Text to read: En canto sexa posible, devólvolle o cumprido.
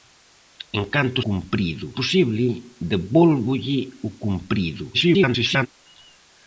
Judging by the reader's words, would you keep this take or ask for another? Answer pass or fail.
fail